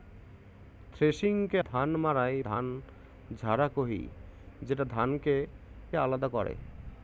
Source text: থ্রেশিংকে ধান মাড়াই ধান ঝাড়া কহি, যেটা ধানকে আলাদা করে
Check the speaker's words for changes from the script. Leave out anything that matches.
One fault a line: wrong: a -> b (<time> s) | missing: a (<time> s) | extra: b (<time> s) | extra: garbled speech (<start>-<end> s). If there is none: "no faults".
no faults